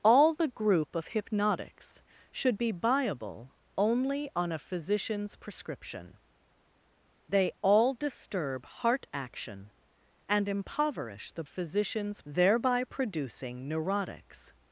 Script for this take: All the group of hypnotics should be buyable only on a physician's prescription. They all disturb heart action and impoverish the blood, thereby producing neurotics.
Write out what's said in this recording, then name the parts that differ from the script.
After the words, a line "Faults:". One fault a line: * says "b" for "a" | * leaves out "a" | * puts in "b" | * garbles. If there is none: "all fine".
All the group of hypnotics should be buyable only on a physician's prescription. They all disturb heart action and impoverish the physician's, thereby producing neurotics.
Faults:
* says "physician's" for "blood"